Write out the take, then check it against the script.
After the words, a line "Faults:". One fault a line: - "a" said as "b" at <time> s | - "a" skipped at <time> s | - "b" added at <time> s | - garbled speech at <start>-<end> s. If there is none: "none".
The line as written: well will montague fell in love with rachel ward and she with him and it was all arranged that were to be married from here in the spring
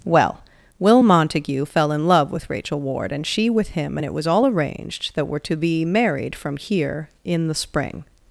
well will montague fell in love with rachel ward and she with him and it was all arranged that were to be married from here in the spring
Faults:
none